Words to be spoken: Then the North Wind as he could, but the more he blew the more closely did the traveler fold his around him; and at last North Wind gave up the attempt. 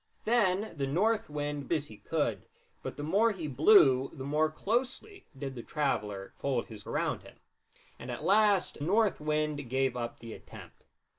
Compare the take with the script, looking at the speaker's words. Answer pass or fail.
pass